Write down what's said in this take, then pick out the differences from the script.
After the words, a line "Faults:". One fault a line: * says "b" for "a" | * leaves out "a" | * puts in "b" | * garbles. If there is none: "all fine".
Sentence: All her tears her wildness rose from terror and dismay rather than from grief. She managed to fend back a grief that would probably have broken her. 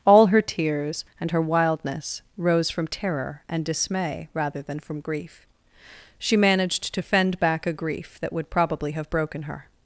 All her tears and her wildness rose from terror and dismay rather than from grief. She managed to fend back a grief that would probably have broken her.
Faults:
* puts in "and"